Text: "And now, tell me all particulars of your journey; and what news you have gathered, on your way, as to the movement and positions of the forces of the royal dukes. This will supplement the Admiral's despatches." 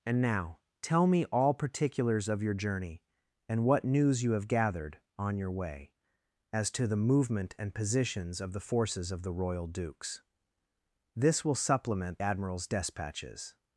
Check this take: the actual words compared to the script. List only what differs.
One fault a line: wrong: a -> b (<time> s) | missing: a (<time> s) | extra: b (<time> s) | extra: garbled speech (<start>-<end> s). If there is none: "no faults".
missing: the (12.2 s)